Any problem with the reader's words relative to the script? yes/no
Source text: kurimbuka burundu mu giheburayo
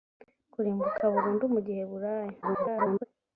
yes